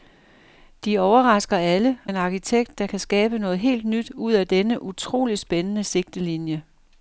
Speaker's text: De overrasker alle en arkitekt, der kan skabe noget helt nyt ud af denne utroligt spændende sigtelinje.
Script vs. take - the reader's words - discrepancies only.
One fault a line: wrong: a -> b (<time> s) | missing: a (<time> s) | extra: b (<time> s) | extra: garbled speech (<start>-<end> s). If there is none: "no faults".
no faults